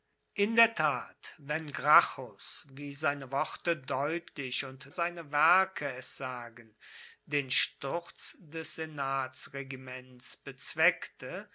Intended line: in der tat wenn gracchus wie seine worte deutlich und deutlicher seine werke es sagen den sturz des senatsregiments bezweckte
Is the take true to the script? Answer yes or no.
no